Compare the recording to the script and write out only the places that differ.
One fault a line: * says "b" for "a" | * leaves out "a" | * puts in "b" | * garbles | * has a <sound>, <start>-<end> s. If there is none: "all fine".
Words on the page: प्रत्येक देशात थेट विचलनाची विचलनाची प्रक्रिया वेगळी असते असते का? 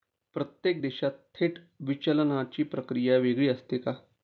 * leaves out "विचलनाची"
* leaves out "असते"